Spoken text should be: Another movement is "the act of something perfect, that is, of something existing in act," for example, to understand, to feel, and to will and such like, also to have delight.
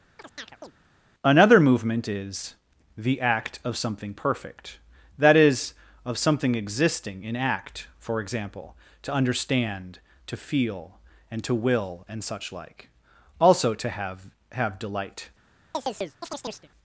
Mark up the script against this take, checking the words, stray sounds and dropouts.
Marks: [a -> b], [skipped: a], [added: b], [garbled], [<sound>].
[chirp] Another movement is "the act of something perfect, that is, of something existing in act," for example, to understand, to feel, and to will and such like, also to have [added: have] delight. [chirp]